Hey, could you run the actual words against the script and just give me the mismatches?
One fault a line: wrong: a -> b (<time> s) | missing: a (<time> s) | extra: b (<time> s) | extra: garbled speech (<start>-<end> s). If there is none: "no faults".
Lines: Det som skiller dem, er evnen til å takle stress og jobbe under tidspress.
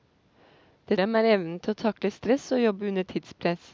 missing: som skiller (1.0 s)